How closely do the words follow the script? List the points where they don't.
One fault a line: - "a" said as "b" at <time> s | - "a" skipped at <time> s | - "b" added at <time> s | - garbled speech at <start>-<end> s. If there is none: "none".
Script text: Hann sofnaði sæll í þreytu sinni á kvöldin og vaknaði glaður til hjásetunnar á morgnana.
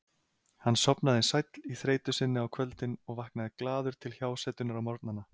none